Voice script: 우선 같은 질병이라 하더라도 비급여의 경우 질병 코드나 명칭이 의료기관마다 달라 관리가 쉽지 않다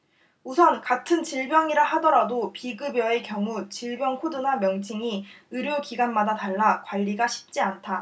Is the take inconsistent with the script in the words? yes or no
no